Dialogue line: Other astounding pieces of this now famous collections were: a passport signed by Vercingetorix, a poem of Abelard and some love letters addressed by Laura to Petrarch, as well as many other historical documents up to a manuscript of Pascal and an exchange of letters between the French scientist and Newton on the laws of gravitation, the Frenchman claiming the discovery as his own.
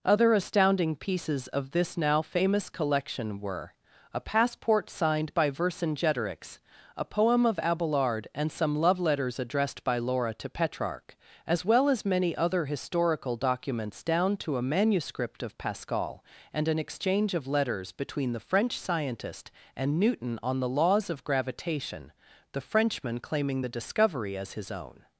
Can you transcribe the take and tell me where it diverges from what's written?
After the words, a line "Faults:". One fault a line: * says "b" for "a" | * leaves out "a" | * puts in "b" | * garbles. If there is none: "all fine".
Other astounding pieces of this now famous collection were: a passport signed by Vercingetorix, a poem of Abelard and some love letters addressed by Laura to Petrarch, as well as many other historical documents down to a manuscript of Pascal and an exchange of letters between the French scientist and Newton on the laws of gravitation, the Frenchman claiming the discovery as his own.
Faults:
* says "collection" for "collections"
* says "down" for "up"